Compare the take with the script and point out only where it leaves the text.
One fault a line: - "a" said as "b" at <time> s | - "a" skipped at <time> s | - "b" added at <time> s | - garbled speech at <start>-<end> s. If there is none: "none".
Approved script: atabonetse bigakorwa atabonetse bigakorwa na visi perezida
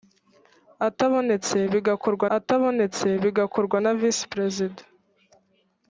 none